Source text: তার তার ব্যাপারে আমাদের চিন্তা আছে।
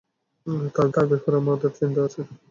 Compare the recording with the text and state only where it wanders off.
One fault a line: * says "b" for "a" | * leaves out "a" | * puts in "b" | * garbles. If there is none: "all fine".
all fine